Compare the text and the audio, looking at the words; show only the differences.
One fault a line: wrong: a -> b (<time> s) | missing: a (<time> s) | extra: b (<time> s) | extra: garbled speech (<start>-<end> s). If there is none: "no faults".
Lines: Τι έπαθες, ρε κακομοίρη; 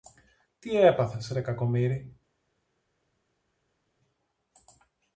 no faults